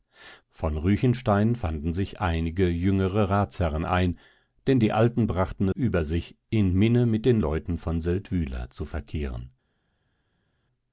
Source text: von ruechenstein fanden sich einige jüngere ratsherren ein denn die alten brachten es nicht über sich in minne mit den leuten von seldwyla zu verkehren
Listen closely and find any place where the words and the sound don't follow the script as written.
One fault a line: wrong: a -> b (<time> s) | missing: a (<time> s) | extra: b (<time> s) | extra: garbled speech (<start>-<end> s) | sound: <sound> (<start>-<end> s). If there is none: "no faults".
missing: es nicht (5.7 s)